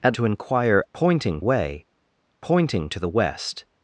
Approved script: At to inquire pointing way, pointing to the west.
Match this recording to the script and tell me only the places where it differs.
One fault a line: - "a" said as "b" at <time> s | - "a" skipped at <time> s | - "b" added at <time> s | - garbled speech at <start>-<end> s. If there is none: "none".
none